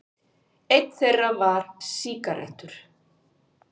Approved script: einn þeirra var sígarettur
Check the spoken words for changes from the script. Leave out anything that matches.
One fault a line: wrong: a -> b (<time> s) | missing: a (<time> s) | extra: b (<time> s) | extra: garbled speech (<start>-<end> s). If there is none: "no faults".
no faults